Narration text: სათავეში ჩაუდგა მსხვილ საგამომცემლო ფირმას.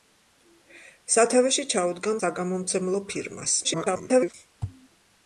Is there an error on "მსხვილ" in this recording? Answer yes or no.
yes